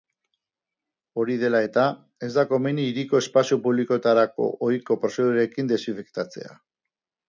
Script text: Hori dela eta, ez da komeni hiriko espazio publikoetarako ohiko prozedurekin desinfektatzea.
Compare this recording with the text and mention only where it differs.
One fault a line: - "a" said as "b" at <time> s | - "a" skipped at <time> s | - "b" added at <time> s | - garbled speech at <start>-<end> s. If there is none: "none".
none